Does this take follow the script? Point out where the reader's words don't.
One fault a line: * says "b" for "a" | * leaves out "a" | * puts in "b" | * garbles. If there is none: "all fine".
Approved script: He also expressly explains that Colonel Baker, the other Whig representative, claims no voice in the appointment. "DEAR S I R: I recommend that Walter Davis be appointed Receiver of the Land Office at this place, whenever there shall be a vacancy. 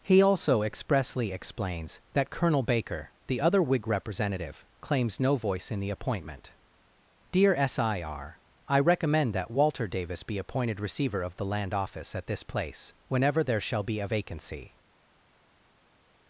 all fine